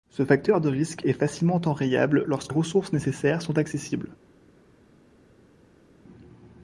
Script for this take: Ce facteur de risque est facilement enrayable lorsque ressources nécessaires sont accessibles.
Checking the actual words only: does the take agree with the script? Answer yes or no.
yes